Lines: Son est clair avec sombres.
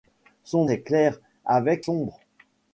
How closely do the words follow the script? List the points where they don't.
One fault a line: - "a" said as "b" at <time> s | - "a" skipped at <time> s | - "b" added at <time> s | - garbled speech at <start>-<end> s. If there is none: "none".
none